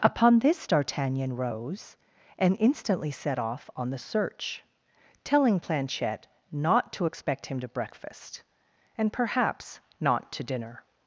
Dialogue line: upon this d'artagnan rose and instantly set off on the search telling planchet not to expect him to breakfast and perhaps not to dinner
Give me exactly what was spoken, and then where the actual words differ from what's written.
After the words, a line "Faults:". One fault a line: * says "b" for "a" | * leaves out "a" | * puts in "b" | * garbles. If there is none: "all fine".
upon this d'artagnan rose and instantly set off on the search telling planchet not to expect him to breakfast and perhaps not to dinner
Faults:
all fine